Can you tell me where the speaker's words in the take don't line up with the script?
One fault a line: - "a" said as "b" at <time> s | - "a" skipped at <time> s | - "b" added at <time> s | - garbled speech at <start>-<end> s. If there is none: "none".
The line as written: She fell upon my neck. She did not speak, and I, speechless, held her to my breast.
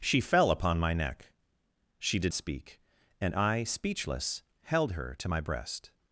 - "not" skipped at 2.3 s